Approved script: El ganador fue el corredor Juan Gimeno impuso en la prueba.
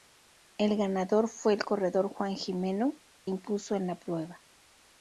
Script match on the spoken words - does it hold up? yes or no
yes